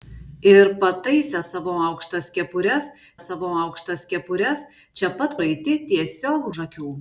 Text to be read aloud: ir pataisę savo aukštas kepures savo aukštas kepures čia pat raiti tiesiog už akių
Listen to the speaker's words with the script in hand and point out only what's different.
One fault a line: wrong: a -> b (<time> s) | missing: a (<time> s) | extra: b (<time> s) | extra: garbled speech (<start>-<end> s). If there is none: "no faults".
no faults